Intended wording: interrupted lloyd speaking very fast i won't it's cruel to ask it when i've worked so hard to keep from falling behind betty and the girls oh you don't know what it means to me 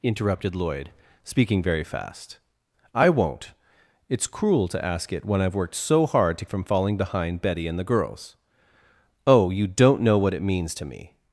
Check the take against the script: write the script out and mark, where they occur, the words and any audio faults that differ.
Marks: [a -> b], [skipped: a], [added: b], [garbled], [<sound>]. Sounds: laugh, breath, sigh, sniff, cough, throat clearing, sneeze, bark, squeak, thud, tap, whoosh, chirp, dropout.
interrupted lloyd speaking very fast i won't it's cruel to ask it when i've worked so hard to [skipped: keep] from falling behind betty and the girls oh you don't know what it means to me